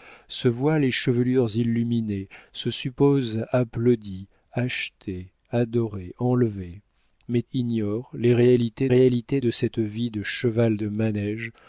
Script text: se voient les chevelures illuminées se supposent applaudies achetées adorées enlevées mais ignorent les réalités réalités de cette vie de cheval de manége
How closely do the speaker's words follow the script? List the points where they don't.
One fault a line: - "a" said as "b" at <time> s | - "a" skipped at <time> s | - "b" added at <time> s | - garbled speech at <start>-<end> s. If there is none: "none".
none